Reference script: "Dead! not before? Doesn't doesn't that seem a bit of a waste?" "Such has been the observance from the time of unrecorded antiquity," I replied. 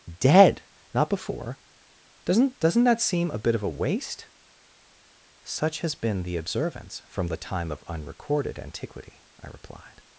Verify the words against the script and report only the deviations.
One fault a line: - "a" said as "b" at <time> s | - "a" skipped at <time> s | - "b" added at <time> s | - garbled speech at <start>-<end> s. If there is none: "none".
none